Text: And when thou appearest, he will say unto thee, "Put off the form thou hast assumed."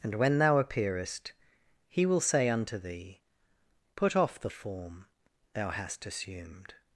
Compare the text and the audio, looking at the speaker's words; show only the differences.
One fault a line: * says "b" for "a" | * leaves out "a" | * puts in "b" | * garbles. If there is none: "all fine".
all fine